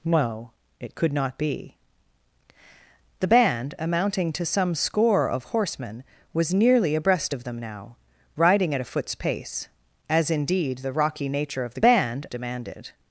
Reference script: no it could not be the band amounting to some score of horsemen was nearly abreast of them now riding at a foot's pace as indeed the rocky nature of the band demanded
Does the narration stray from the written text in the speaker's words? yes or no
no